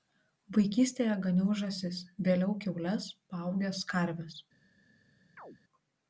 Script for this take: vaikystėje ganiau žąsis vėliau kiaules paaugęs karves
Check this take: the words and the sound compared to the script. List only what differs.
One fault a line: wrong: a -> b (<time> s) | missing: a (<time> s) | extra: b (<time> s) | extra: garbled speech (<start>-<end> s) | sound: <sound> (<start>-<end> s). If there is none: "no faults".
sound: chirp (5.4-5.6 s)